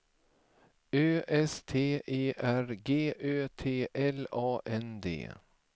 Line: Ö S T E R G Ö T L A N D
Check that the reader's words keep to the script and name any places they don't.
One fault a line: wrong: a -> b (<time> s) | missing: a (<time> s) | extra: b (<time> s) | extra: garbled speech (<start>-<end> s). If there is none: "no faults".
no faults